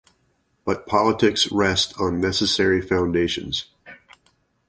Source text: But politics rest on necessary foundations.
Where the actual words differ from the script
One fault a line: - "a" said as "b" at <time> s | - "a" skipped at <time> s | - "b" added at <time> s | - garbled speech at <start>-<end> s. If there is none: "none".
none